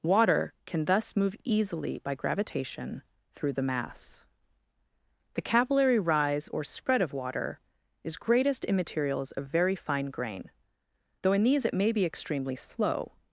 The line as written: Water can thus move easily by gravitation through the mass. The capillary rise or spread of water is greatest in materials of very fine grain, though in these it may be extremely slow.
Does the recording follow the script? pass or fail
pass